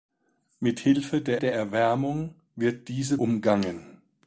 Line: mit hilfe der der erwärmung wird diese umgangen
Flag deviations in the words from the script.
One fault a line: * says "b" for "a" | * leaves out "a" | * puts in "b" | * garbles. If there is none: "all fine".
all fine